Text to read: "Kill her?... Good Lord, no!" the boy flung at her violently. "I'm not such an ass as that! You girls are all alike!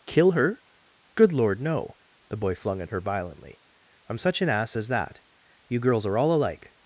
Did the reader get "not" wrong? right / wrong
wrong